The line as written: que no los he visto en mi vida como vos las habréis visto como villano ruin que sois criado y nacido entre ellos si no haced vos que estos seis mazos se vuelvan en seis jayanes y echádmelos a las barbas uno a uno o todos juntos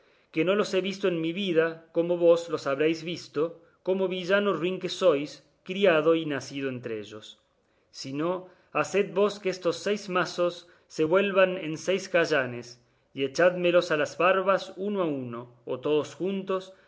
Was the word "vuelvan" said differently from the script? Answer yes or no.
no